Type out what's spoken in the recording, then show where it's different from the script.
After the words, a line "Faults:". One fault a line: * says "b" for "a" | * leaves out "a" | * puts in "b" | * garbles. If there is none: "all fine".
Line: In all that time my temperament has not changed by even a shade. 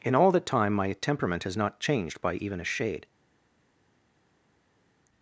In all that time my temperament has not changed by even a shade.
Faults:
all fine